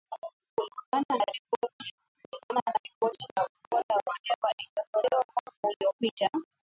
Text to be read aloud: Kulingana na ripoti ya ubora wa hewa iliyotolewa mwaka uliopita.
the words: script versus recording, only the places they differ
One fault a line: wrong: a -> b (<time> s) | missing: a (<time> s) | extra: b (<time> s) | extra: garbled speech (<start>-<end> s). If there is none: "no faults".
no faults